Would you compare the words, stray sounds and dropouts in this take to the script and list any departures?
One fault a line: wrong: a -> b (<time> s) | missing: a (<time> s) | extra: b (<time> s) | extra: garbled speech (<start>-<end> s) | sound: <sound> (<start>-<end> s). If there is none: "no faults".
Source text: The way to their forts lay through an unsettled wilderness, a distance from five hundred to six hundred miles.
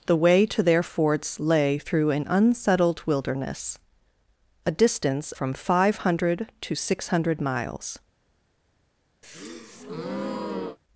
sound: breath (9.2-10.8 s)